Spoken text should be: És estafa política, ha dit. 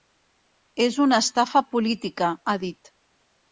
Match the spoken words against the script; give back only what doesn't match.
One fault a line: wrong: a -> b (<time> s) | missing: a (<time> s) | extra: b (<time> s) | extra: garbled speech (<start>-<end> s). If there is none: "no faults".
extra: una (1.1 s)